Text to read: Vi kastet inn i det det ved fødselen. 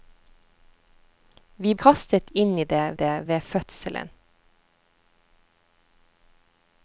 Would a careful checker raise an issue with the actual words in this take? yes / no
no